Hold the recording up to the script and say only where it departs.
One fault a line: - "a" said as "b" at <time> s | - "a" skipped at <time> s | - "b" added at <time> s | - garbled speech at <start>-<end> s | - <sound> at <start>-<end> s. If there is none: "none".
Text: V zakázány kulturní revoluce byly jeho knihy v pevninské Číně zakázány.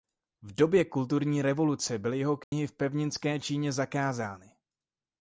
- "zakázány" said as "době" at 0.6 s
- dropout at 2.4-2.5 s